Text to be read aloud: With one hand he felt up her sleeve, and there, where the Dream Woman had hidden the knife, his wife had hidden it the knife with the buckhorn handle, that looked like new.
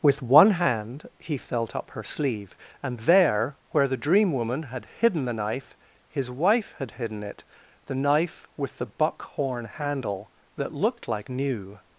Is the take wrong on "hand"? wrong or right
right